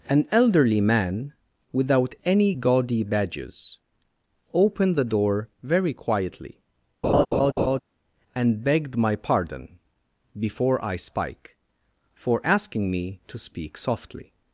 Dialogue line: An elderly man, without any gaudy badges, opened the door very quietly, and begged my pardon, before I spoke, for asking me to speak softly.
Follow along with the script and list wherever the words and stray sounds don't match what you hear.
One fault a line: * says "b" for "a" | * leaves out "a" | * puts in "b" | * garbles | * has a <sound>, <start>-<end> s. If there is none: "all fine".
* has a laugh, 7.0-7.8 s
* says "spike" for "spoke"